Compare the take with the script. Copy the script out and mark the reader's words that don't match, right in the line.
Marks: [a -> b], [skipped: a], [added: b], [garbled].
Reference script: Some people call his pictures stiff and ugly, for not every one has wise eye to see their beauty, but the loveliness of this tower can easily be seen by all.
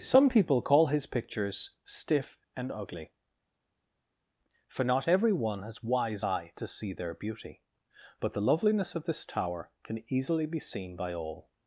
Some people call his pictures stiff and ugly, for not every one has wise eye to see their beauty, but the loveliness of this tower can easily be seen by all.